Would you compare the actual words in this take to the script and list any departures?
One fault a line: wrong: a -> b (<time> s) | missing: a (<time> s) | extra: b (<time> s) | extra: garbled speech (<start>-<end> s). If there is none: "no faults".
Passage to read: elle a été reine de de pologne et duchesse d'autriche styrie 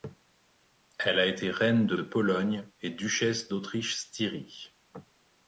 no faults